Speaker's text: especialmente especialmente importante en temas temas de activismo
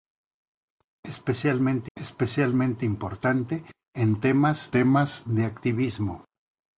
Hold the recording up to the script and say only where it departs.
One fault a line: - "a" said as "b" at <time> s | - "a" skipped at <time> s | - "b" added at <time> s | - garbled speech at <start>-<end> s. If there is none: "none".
none